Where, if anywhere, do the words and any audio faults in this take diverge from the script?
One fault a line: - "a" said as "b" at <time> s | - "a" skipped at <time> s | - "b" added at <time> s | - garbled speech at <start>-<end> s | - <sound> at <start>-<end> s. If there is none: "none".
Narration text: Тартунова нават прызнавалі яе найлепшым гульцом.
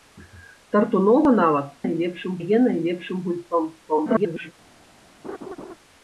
- "прызнавалі" said as "найлепшым" at 1.8 s
- garbled speech at 3.8-4.5 s
- laugh at 5.2-5.7 s